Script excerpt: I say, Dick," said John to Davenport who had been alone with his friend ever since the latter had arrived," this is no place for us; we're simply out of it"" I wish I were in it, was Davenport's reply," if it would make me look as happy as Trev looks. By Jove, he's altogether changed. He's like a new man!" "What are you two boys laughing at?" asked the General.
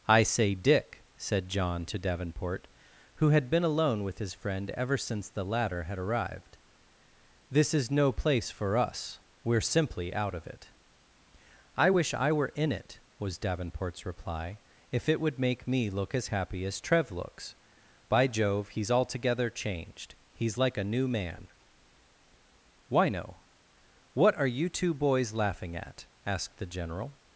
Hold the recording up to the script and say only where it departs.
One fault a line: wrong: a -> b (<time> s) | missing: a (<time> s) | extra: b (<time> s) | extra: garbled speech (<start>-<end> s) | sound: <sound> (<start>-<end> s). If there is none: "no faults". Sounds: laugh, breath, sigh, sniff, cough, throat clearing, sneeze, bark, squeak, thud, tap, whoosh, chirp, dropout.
extra: why no (22.9 s)